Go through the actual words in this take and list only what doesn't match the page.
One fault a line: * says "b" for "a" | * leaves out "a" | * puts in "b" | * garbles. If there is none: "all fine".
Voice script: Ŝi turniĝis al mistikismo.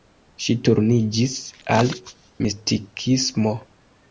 all fine